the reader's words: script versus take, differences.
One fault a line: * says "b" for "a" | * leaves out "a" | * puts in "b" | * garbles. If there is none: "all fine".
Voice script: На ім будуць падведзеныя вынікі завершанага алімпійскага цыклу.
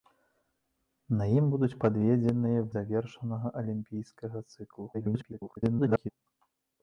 * leaves out "вынікі"
* garbles